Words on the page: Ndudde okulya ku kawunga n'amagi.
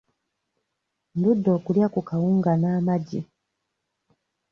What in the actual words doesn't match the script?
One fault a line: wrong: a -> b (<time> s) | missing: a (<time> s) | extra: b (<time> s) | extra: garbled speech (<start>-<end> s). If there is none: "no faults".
no faults